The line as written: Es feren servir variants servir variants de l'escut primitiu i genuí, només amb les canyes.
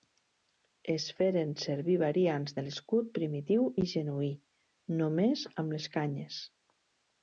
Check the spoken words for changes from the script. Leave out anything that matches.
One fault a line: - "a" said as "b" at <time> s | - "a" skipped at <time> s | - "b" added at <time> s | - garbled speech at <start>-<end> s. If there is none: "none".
- "servir variants" skipped at 2.6 s